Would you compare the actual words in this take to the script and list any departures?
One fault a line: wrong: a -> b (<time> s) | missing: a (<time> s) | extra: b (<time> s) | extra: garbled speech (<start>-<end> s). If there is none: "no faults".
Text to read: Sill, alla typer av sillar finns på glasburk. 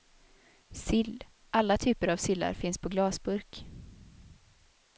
no faults